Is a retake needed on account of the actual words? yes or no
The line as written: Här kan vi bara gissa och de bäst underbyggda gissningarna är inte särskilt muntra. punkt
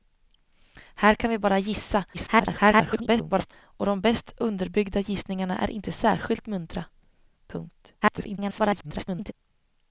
yes